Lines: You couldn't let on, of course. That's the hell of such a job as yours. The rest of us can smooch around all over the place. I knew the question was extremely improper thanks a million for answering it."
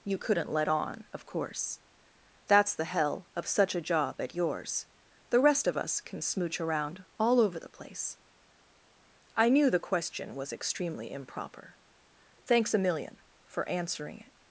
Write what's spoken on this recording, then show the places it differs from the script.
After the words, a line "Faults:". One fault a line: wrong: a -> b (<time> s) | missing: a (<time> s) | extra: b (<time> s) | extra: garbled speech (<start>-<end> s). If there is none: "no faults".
You couldn't let on, of course. That's the hell of such a job at yours. The rest of us can smooch around all over the place. I knew the question was extremely improper thanks a million for answering it."
Faults:
wrong: as -> at (4.2 s)